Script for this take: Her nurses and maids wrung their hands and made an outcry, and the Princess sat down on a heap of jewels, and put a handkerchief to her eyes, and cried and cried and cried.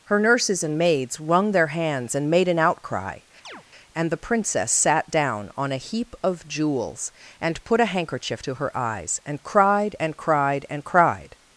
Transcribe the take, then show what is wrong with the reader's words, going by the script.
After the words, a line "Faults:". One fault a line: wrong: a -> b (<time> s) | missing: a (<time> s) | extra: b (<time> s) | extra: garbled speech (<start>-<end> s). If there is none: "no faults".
Her nurses and maids wrung their hands and made an outcry, and the Princess sat down on a heap of jewels, and put a handkerchief to her eyes, and cried and cried and cried.
Faults:
no faults